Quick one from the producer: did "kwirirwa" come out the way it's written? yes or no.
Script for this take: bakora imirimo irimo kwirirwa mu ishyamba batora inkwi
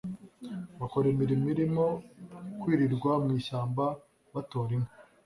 yes